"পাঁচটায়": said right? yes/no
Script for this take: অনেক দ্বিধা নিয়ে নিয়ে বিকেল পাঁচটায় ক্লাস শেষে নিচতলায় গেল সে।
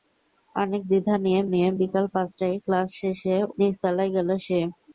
yes